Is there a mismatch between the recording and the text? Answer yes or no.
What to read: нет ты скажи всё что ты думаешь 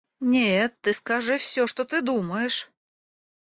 no